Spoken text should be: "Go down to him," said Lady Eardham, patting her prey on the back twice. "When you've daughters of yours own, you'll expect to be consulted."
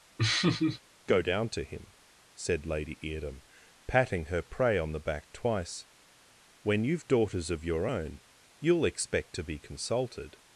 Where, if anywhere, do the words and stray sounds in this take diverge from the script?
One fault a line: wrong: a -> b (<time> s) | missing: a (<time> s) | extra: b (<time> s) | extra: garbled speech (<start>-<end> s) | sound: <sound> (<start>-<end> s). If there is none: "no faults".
sound: laugh (0.2-0.8 s)
wrong: yours -> your (7.6 s)